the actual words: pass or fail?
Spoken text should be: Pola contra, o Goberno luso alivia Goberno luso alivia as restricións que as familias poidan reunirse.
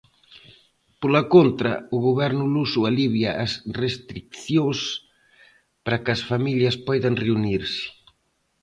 fail